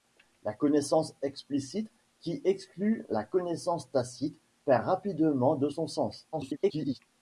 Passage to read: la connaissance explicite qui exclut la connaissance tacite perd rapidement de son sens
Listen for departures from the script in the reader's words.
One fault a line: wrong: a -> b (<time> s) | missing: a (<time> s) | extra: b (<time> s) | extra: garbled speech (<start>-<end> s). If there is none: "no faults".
extra: garbled speech (6.3-7.0 s)